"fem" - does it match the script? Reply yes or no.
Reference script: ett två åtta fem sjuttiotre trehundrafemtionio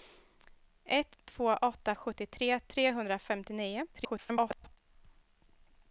no